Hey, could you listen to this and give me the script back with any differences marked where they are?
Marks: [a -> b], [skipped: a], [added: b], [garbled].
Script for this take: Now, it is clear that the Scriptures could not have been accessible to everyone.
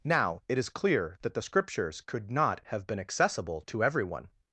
Now, it is clear that the Scriptures could not have been accessible to everyone.